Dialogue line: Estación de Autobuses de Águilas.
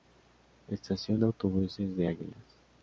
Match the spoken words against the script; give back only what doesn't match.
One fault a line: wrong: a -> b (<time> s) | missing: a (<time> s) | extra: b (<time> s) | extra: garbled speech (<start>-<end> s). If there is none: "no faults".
no faults